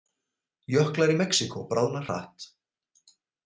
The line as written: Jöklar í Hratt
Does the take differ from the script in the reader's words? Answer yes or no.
yes